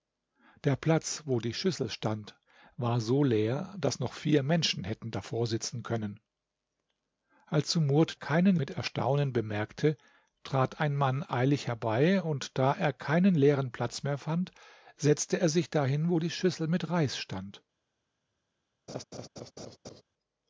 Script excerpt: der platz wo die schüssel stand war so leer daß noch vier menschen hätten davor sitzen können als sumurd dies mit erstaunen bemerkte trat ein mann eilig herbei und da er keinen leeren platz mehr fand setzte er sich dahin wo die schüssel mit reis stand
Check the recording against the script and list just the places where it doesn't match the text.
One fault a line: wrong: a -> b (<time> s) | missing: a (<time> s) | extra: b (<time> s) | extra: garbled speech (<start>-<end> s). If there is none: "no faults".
wrong: dies -> keinen (8.1 s)